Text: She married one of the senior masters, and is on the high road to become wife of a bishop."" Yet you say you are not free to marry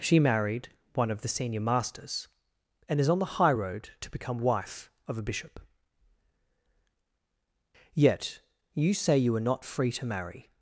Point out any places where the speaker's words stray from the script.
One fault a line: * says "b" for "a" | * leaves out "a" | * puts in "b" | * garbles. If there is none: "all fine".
all fine